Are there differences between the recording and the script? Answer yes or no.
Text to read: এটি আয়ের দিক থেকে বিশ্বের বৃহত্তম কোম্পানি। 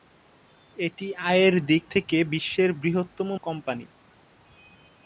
no